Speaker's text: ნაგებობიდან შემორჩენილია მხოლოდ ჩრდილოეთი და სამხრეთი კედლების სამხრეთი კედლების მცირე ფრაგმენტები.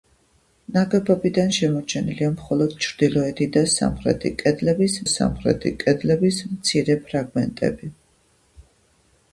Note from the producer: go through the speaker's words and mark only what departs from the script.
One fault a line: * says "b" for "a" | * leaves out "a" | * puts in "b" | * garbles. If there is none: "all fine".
all fine